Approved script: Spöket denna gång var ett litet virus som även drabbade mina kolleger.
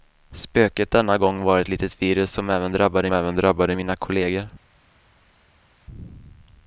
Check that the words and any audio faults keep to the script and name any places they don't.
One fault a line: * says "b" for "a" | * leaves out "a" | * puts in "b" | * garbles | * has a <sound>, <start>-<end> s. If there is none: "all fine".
* puts in "även drabbade"